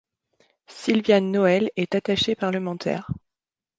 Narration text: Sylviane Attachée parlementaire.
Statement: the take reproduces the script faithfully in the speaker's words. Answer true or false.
false